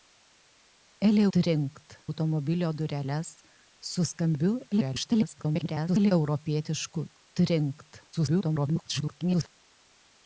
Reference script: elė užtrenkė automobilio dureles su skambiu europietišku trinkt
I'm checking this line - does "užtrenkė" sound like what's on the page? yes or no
no